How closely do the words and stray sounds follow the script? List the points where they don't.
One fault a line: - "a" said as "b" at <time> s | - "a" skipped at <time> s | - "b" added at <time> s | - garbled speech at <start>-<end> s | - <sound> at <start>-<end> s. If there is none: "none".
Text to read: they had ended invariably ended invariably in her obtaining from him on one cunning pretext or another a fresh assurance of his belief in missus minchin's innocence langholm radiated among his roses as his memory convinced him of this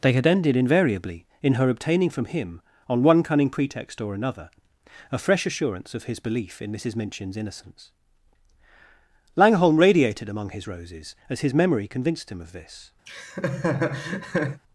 - "ended invariably" skipped at 1.2 s
- laugh at 13.1-14.6 s